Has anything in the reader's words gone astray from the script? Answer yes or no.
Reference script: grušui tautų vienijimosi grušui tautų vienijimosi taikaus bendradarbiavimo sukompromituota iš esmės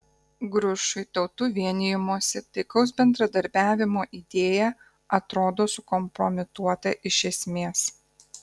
yes